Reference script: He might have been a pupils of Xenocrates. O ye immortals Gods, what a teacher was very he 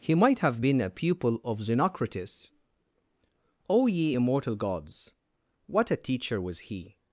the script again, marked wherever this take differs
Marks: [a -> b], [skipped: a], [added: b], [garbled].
He might have been a [pupils -> pupil] of Xenocrates. O ye [immortals -> immortal] Gods, what a teacher was [skipped: very] he